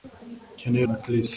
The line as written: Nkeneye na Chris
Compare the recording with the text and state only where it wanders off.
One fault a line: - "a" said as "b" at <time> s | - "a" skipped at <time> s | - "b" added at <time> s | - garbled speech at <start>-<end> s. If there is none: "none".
none